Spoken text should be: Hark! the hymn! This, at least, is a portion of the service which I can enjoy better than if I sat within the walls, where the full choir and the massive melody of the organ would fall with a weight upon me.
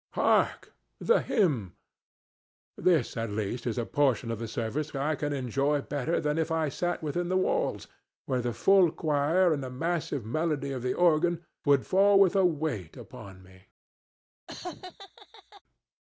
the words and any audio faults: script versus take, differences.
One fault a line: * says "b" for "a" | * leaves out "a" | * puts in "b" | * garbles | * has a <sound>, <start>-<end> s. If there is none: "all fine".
* leaves out "which"
* has a laugh, 14.5-15.6 s